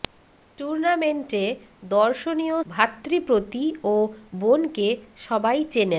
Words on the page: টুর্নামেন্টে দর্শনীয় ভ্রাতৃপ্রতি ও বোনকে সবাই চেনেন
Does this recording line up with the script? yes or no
yes